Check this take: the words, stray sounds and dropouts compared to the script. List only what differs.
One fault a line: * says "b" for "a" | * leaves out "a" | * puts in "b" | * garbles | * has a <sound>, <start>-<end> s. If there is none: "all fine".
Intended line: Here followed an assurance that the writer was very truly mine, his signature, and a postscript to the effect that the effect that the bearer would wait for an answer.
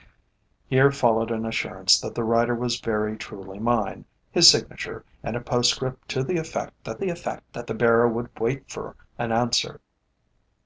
all fine